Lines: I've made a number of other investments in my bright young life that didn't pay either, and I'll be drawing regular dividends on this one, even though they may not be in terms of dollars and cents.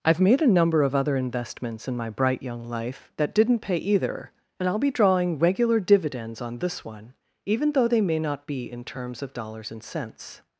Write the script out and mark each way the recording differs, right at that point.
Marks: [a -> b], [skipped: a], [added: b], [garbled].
I've made a number of other investments in my bright young life that didn't pay either, and I'll be drawing regular dividends on this one, even though they may not be in terms of dollars and cents.